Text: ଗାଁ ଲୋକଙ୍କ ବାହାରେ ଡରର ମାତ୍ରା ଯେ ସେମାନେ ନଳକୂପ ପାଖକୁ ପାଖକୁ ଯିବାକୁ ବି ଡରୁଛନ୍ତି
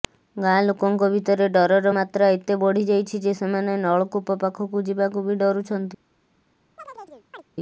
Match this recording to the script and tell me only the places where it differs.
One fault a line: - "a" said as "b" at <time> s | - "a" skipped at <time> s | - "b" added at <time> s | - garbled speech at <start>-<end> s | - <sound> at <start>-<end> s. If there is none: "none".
- "ବାହାରେ" said as "ଭିତରେ" at 1.1 s
- "ଏତେ ବଢିଯାଇଛି" added at 2.3 s
- "ପାଖକୁ" skipped at 4.9 s
- chirp at 6.8-7.4 s